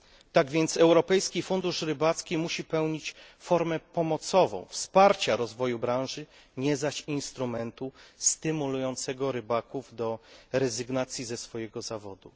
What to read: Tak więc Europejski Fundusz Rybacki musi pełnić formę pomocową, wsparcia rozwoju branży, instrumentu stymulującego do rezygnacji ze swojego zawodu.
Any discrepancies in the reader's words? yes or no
yes